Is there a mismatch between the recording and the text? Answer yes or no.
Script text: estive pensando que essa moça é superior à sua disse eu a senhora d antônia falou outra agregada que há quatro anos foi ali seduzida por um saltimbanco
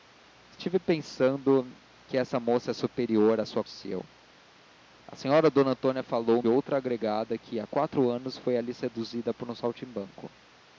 no